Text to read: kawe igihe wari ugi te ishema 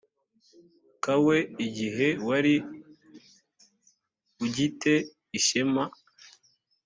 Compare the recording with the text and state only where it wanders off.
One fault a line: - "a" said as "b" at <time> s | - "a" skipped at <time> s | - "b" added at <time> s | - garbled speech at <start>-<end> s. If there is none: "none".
none